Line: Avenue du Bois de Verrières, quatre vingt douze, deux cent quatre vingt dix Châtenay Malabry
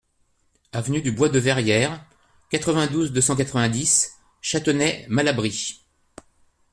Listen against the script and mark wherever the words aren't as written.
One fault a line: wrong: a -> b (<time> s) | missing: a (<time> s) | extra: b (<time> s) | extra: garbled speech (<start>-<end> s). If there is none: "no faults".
no faults